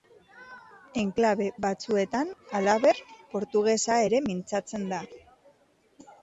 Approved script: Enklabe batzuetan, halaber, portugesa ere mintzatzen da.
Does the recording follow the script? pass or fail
pass